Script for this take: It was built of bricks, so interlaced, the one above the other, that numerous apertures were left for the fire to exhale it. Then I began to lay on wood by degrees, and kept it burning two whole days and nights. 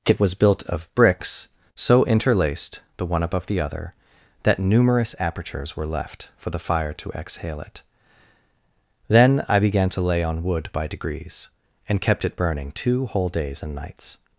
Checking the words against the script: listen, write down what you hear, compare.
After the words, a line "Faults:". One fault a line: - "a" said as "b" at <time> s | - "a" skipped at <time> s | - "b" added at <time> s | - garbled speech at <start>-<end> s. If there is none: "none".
It was built of bricks, so interlaced, the one above the other, that numerous apertures were left for the fire to exhale it. Then I began to lay on wood by degrees, and kept it burning two whole days and nights.
Faults:
none